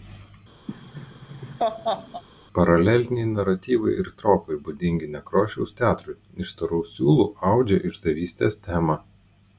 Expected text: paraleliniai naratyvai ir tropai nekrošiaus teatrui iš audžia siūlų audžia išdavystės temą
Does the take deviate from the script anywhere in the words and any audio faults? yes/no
yes